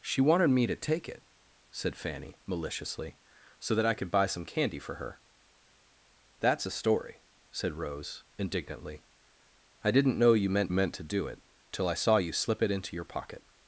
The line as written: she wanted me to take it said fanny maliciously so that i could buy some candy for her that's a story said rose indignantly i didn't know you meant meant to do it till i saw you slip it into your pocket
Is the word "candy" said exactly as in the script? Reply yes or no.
yes